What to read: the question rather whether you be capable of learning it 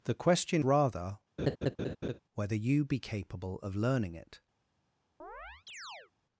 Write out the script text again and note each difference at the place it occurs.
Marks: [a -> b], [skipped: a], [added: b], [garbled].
the question rather whether you be capable of learning it